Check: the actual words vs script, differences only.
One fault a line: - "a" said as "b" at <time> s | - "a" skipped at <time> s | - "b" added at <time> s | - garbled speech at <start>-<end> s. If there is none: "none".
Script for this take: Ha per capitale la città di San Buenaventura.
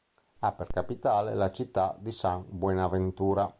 none